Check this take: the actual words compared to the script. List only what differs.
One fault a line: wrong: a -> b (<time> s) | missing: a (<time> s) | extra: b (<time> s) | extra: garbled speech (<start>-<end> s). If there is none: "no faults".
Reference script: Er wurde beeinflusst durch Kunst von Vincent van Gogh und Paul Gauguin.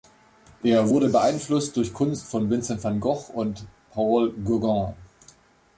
no faults